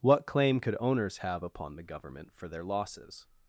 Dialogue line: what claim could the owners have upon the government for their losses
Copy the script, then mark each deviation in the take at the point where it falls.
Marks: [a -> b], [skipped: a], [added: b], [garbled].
what claim could [skipped: the] owners have upon the government for their losses